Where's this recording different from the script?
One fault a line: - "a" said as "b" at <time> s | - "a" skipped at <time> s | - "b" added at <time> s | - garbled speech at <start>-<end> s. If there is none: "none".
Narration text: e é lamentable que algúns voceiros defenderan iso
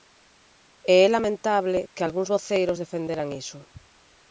none